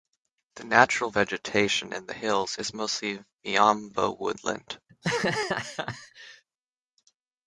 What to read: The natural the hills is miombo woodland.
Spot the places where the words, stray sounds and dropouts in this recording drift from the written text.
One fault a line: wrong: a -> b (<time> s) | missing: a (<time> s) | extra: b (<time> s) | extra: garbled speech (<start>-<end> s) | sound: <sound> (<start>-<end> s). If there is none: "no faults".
extra: vegetation in (1.1 s)
extra: mostly (2.7 s)
sound: laugh (4.9-6.4 s)